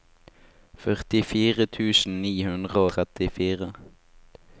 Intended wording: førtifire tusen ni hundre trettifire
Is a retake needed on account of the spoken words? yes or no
no